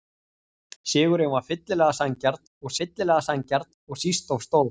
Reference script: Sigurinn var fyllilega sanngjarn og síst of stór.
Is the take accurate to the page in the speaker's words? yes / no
no